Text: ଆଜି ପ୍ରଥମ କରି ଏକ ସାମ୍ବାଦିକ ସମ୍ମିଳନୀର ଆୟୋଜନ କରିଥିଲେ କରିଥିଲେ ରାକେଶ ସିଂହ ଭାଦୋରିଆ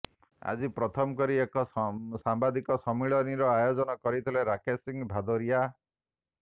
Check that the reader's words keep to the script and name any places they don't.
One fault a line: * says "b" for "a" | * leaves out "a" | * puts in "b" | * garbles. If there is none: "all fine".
* leaves out "କରିଥିଲେ"